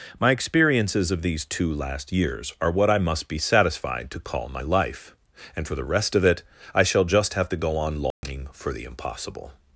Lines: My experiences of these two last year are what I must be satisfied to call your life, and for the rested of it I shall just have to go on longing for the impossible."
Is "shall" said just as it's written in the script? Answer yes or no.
yes